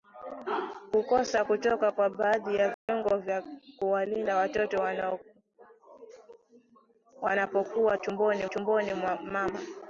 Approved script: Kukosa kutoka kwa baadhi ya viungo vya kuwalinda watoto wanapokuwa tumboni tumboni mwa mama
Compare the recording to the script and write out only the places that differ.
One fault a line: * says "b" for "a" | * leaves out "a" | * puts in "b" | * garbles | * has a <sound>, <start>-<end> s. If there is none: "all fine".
* has a dropout, 2.7-2.9 s